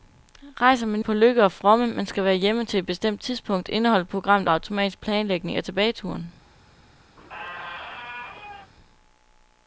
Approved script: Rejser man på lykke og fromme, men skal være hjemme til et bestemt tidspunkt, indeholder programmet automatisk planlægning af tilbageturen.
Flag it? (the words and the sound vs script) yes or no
yes